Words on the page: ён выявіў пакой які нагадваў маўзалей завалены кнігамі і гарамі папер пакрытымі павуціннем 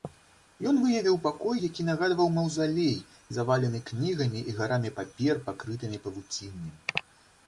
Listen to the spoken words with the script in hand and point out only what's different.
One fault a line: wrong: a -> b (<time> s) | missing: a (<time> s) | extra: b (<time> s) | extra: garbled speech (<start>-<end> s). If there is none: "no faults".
no faults